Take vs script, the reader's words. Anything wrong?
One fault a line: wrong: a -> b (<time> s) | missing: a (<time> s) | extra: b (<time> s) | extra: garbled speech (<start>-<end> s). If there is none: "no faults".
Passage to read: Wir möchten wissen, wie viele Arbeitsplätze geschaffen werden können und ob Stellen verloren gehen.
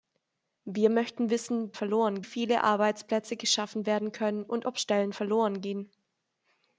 wrong: wie -> verloren (1.7 s)